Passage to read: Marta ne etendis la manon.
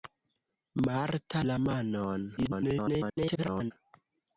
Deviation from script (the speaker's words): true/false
true